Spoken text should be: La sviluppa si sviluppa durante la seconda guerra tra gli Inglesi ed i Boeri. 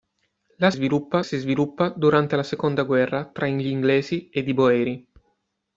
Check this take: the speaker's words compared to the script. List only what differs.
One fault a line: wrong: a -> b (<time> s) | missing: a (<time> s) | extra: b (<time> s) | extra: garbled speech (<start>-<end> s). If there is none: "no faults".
no faults